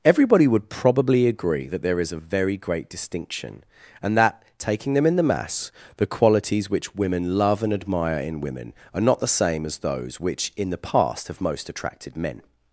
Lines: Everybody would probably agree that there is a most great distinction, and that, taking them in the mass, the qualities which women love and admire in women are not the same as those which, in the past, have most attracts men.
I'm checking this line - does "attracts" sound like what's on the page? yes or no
no